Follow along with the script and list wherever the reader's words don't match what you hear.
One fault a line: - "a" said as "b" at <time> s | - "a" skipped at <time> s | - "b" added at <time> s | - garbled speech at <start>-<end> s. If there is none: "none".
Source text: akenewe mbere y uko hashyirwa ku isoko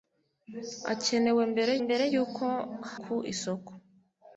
- "mbere" added at 1.9 s
- "hashyirwa" skipped at 2.5 s